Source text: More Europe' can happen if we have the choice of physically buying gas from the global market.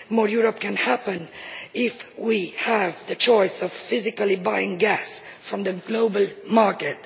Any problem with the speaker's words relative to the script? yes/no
no